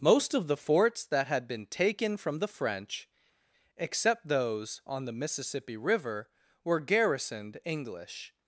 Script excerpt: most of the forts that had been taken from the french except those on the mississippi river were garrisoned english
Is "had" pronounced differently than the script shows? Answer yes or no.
no